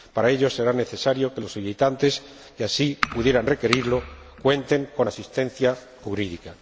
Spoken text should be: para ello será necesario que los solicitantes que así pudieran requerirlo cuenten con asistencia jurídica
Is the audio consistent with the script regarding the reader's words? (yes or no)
yes